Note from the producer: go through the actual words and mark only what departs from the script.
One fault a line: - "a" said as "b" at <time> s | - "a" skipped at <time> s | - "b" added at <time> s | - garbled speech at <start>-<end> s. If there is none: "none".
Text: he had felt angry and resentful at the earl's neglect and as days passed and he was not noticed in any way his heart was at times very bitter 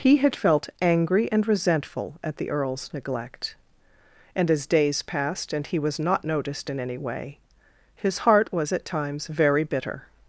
none